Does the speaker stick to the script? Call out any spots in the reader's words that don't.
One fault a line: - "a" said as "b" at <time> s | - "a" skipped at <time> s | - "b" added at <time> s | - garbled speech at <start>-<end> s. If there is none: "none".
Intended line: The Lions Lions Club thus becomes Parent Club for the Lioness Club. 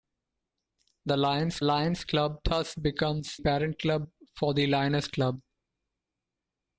none